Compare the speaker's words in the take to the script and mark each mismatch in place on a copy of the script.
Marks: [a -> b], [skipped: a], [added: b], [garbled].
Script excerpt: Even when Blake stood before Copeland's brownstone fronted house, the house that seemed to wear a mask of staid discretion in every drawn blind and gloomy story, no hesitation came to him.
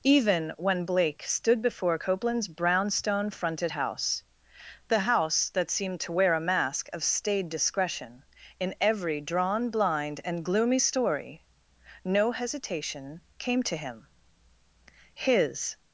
Even when Blake stood before Copeland's brownstone fronted house, the house that seemed to wear a mask of staid discretion in every drawn blind and gloomy story, no hesitation came to him. [added: His]